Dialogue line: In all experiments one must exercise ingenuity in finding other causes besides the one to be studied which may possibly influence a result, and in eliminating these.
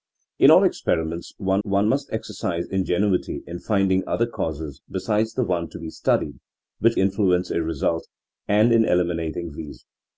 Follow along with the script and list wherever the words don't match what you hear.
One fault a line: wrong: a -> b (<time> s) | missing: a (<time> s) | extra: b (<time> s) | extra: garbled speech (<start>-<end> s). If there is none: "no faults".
extra: one (1.6 s)
missing: may possibly (7.0 s)